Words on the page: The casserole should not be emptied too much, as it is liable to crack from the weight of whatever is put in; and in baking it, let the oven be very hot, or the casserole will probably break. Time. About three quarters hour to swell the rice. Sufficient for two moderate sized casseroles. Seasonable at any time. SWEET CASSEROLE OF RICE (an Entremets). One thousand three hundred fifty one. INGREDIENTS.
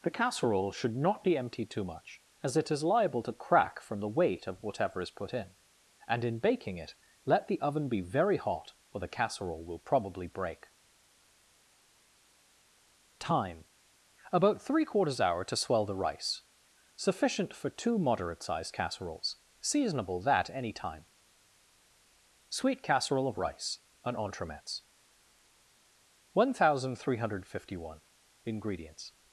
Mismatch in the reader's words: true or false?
true